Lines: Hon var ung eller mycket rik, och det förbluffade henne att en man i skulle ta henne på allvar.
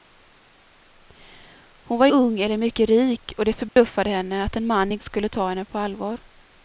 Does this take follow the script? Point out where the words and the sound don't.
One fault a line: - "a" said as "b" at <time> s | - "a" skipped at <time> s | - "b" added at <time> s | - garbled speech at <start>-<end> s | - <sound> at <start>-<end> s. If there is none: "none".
- dropout at 3.7-3.8 s